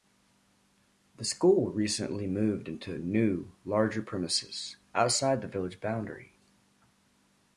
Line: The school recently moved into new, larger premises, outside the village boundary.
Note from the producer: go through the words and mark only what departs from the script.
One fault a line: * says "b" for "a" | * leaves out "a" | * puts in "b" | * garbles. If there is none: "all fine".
all fine